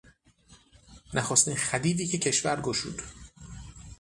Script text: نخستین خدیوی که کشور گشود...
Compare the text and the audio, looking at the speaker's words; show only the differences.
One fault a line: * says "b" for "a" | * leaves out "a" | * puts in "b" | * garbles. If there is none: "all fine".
all fine